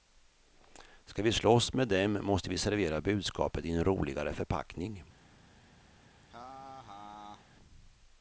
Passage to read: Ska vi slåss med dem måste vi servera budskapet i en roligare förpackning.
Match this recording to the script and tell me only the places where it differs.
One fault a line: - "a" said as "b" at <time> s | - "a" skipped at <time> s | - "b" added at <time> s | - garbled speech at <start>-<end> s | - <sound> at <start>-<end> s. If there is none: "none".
- laugh at 6.2-7.5 s